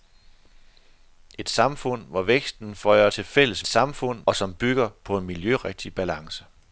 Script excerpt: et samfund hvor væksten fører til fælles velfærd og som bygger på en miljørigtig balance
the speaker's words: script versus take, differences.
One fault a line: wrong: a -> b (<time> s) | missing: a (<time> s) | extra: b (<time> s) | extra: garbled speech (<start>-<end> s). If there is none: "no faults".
wrong: velfærd -> samfund (3.7 s)